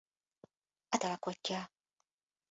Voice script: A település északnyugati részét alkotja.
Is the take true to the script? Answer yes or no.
no